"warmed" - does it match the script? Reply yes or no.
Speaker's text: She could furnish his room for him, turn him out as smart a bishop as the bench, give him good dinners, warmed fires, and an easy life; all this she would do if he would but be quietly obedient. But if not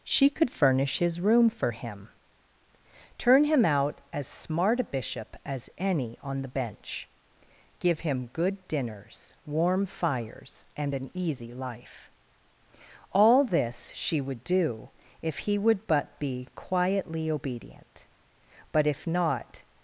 no